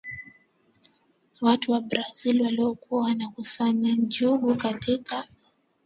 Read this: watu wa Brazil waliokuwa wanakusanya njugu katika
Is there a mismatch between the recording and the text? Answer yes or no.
no